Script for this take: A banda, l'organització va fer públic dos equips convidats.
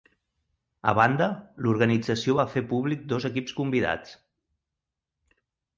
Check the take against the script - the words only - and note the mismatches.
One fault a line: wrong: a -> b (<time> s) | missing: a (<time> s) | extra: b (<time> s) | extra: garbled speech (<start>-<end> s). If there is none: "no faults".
no faults